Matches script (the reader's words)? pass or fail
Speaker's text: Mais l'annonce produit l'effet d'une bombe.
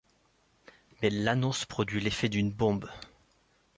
pass